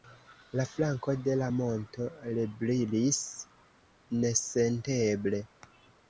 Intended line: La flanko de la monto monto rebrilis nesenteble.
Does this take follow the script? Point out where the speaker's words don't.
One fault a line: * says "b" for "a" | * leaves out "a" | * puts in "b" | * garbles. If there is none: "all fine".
* leaves out "monto"